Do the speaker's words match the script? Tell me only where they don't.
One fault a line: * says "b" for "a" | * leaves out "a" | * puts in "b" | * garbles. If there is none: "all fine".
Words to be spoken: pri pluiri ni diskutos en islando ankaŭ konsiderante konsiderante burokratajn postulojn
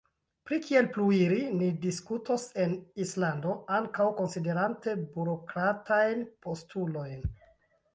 * puts in "kiel"
* leaves out "konsiderante"